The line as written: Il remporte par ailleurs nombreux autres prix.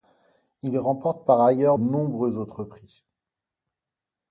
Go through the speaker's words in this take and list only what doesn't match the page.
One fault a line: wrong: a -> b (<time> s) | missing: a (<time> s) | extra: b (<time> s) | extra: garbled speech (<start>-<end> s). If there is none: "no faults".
no faults